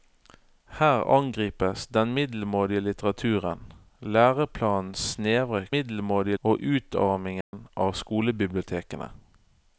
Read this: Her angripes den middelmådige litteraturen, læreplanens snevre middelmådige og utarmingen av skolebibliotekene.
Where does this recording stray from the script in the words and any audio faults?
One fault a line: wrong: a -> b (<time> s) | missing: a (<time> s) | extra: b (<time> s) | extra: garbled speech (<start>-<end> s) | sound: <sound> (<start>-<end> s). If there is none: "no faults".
sound: dropout (7.4-7.5 s)